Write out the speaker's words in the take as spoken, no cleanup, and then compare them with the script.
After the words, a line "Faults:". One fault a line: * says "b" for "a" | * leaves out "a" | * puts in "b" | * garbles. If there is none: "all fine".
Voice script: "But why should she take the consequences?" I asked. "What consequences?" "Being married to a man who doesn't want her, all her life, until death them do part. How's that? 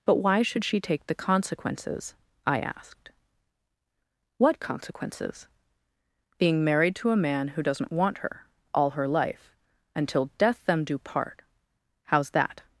"But why should she take the consequences?" I asked. "What consequences?" "Being married to a man who doesn't want her, all her life, until death them do part. How's that?
Faults:
all fine